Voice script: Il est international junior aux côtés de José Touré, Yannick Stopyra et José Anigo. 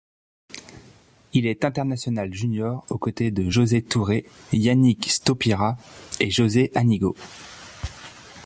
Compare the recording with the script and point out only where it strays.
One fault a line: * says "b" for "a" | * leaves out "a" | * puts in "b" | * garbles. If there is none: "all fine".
all fine